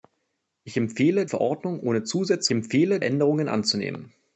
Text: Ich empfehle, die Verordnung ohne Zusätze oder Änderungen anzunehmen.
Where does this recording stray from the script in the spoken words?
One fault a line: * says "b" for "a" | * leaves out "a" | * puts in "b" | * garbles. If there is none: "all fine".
* leaves out "die"
* says "empfehle" for "oder"